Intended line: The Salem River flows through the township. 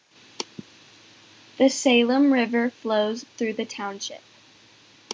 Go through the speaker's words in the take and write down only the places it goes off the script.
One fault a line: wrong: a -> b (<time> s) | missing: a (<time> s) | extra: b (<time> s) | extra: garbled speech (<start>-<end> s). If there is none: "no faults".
no faults